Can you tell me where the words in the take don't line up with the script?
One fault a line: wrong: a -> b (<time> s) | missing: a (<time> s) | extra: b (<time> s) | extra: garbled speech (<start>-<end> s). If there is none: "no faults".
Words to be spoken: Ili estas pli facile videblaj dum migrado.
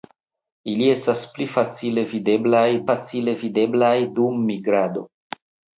extra: facile videblaj (2.9 s)